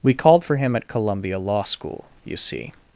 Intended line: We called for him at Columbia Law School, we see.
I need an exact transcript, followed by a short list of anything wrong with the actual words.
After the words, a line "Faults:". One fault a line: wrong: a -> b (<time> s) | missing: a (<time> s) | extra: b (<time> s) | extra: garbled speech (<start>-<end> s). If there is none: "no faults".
We called for him at Columbia Law School, you see.
Faults:
wrong: we -> you (2.2 s)